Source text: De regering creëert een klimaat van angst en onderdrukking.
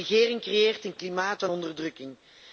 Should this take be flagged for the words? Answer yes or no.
yes